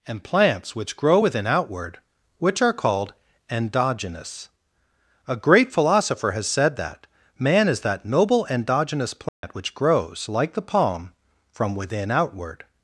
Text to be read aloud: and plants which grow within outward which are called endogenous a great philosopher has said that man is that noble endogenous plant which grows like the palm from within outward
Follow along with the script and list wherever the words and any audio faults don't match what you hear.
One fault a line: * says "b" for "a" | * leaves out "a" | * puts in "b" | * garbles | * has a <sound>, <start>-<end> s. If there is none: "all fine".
* has a dropout, 9.3-9.4 s